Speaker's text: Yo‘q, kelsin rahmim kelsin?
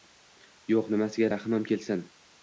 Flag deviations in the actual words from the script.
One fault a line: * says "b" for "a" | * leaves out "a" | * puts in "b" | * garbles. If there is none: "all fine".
* says "nimasiga" for "kelsin"